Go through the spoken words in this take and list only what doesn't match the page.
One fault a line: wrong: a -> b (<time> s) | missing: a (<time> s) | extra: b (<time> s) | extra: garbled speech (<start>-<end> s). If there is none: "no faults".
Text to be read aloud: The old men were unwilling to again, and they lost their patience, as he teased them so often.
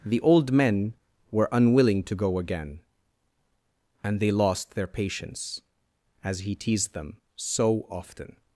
extra: go (2.1 s)